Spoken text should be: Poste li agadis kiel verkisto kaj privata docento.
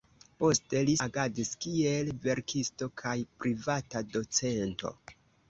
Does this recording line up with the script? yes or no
yes